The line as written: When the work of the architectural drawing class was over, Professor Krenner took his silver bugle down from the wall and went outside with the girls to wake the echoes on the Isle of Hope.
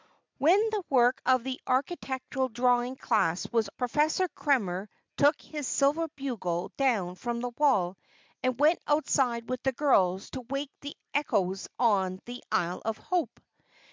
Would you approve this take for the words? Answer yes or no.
no